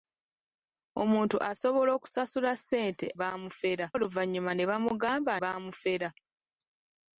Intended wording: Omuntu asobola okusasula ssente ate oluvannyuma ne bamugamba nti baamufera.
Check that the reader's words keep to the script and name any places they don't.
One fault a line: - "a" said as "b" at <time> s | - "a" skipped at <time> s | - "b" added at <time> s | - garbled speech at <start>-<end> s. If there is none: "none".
- "ate" said as "baamufera" at 3.2 s
- "nti" skipped at 5.3 s